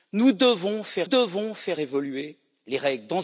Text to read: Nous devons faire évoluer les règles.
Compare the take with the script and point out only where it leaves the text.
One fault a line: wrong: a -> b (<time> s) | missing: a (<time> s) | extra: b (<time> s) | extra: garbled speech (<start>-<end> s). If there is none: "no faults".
extra: devons faire (1.0 s)